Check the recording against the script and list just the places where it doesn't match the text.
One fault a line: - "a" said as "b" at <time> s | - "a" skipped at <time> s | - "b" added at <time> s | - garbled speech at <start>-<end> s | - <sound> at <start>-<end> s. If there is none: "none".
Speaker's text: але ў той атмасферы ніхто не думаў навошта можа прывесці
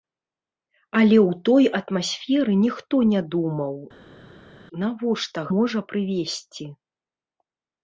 none